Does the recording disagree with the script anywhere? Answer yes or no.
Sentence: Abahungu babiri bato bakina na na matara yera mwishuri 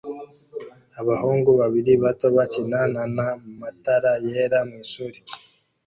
no